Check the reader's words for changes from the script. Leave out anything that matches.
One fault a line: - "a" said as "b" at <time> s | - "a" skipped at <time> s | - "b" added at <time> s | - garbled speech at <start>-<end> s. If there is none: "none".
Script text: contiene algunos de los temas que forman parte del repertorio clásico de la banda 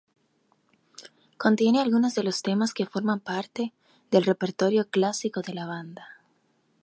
none